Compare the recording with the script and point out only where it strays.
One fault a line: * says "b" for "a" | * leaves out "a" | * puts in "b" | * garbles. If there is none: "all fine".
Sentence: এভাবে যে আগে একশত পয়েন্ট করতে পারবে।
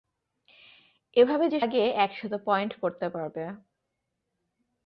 all fine